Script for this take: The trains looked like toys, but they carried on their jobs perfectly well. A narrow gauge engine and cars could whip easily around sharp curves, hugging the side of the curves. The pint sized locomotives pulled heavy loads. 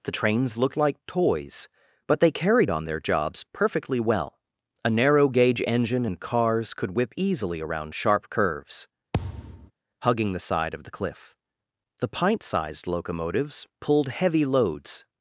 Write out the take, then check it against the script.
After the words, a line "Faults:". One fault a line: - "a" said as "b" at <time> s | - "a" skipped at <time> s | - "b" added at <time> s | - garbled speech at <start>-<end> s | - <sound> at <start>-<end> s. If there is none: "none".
The trains looked like toys, but they carried on their jobs perfectly well. A narrow gauge engine and cars could whip easily around sharp curves, hugging the side of the cliff. The pint sized locomotives pulled heavy loads.
Faults:
- thud at 9.1-9.7 s
- "curves" said as "cliff" at 10.9 s